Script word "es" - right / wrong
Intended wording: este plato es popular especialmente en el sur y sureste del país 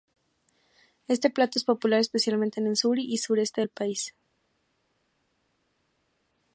right